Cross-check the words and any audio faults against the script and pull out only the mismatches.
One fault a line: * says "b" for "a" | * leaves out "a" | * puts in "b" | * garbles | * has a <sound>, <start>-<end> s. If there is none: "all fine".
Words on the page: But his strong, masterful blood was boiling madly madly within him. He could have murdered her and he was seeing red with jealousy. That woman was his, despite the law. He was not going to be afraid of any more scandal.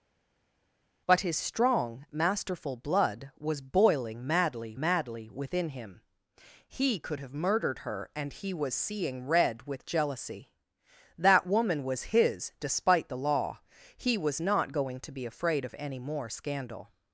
all fine